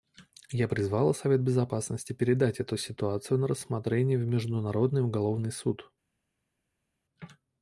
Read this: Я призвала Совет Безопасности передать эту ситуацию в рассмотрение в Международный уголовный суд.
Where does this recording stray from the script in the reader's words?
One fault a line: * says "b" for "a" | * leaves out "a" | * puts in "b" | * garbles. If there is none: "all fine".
* says "на" for "в"